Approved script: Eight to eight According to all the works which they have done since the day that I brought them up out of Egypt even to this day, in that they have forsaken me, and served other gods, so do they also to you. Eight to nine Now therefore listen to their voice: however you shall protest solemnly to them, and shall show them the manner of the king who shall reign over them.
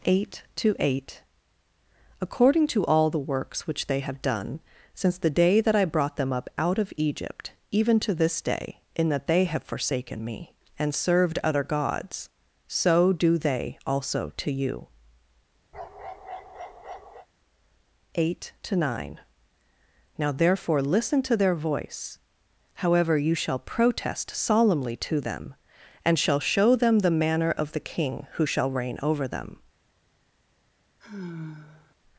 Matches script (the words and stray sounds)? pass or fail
fail